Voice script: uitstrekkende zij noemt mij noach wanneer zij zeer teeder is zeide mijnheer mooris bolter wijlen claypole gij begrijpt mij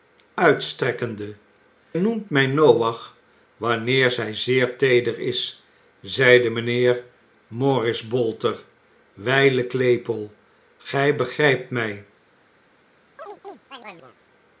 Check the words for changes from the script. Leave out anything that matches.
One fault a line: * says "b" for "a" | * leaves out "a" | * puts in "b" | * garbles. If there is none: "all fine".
* leaves out "zij"